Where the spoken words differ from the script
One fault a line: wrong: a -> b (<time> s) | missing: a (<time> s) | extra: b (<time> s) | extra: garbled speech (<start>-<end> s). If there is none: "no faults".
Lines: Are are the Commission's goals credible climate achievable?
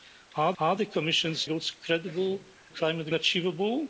no faults